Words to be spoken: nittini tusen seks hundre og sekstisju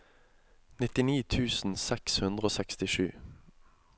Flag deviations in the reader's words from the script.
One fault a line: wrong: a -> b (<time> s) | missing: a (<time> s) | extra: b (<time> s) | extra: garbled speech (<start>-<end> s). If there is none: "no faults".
no faults